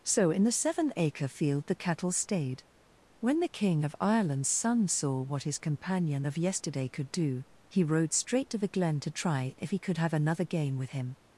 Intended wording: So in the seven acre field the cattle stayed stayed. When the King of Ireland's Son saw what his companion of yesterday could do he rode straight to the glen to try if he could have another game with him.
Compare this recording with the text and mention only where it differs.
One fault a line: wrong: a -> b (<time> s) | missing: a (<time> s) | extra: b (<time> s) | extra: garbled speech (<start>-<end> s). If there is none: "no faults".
missing: stayed (2.6 s)